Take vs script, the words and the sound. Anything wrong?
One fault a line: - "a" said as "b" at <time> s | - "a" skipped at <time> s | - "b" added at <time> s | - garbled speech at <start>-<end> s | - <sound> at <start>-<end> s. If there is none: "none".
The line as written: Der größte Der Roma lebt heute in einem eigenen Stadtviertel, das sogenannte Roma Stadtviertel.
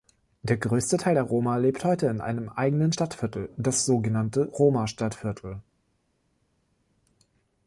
- "Teil" added at 1.0 s